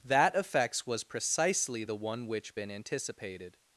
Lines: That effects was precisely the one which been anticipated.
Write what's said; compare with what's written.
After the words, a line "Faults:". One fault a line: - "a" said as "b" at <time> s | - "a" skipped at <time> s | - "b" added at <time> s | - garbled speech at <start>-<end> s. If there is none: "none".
That effects was precisely the one which been anticipated.
Faults:
none